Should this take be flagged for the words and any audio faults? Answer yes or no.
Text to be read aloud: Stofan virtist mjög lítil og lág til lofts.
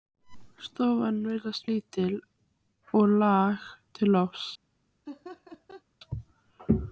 yes